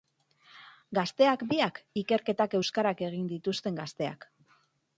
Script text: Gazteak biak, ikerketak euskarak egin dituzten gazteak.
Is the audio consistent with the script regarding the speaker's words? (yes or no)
yes